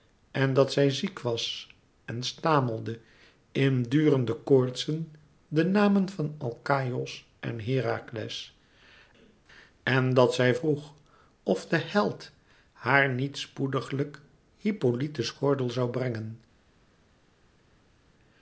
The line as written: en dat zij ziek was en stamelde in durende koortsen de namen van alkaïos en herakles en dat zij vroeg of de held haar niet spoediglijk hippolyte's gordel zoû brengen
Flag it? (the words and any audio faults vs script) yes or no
no